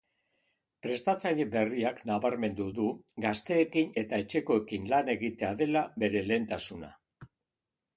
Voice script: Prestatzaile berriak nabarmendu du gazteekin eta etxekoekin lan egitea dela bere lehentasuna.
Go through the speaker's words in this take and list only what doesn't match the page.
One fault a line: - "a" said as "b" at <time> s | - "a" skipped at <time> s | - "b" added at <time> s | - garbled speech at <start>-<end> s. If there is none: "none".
none